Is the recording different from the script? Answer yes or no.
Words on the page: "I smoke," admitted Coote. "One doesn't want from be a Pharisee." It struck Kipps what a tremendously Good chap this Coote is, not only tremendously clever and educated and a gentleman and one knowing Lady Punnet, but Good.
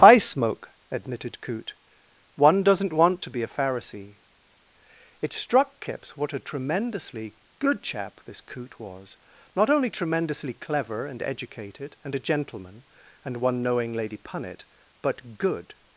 yes